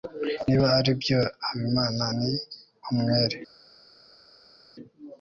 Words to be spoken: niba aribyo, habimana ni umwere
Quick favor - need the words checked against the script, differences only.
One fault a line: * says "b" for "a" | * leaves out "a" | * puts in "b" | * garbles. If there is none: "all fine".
all fine